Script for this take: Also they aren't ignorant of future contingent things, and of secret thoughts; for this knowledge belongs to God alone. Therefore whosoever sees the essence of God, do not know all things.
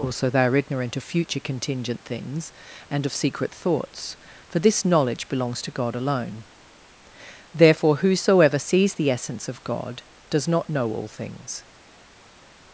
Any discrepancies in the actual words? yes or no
yes